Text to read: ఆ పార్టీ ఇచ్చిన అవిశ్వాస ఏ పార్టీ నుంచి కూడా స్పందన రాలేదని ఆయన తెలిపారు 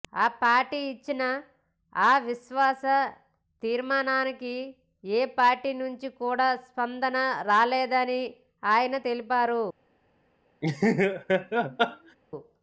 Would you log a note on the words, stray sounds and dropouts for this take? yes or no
yes